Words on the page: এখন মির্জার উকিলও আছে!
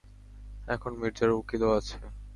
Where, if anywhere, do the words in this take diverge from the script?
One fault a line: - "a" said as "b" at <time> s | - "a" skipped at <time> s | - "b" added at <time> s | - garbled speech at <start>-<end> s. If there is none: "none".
none